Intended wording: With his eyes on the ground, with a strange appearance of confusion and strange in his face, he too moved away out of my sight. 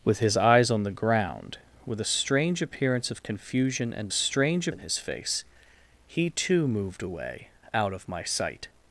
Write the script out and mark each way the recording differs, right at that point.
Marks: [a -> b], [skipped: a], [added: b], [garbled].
With his eyes on the ground, with a strange appearance of confusion and strange in his face, he too moved away out of my sight.